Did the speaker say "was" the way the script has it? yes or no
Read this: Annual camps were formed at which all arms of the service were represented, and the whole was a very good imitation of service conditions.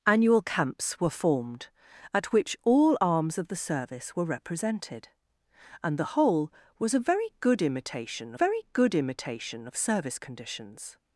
yes